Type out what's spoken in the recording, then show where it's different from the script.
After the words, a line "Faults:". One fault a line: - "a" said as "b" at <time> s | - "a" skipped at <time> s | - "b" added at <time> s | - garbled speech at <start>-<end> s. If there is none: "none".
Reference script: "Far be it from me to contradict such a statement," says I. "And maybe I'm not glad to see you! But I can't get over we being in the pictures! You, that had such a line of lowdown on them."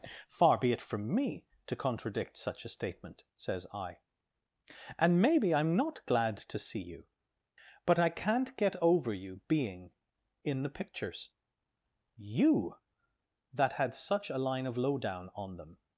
"Far be it from me to contradict such a statement," says I. "And maybe I'm not glad to see you! But I can't get over you being in the pictures! You, that had such a line of lowdown on them."
Faults:
- "we" said as "you" at 9.1 s